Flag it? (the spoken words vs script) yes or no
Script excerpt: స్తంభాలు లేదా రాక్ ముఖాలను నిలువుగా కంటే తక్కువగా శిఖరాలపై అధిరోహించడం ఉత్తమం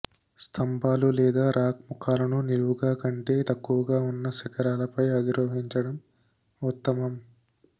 yes